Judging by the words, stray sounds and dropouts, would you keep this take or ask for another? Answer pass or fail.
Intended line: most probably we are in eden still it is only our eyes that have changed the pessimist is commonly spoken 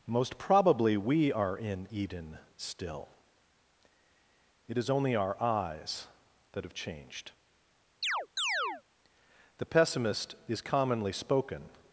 fail